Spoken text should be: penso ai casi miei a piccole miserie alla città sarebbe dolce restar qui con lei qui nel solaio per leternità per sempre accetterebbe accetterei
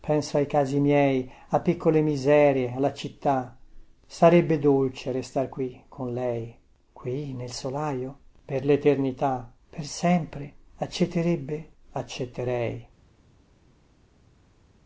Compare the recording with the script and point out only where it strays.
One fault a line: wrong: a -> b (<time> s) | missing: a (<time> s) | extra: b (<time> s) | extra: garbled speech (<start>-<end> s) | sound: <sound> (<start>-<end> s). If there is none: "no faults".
no faults